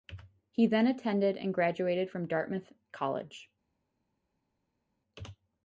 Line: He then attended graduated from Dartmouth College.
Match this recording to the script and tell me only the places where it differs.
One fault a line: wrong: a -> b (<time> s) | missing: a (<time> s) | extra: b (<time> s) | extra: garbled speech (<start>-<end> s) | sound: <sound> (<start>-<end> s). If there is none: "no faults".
extra: and (1.4 s)